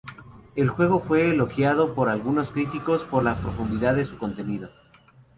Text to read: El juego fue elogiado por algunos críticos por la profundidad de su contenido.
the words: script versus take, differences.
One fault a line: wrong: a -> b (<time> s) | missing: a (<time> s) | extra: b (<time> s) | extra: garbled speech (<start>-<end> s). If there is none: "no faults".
no faults